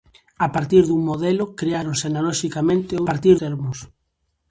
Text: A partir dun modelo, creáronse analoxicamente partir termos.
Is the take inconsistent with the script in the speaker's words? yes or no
no